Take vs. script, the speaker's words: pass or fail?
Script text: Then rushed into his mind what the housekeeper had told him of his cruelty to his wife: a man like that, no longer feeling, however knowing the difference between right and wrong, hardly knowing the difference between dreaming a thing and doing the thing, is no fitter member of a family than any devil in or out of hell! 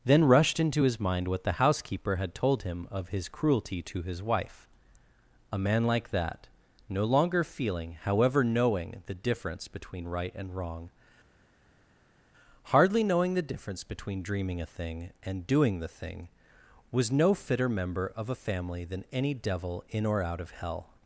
fail